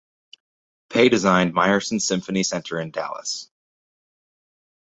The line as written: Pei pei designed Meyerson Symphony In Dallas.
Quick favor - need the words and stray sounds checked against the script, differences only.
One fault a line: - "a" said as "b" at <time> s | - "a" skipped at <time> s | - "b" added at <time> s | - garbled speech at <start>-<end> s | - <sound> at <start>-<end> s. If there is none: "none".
- "pei" skipped at 1.1 s
- "Center" added at 2.4 s